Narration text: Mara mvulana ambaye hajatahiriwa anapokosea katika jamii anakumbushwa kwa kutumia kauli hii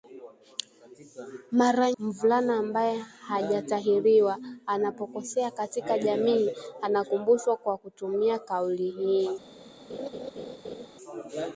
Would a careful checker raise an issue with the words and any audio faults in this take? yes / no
yes